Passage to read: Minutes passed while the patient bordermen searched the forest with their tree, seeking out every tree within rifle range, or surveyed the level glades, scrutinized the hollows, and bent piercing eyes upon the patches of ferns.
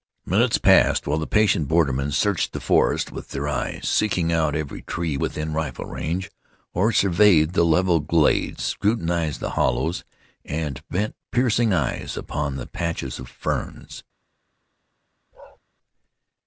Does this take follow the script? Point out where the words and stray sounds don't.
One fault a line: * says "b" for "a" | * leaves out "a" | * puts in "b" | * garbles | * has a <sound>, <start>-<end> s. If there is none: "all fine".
* says "eyes" for "tree"
* has a bark, 15.3-15.6 s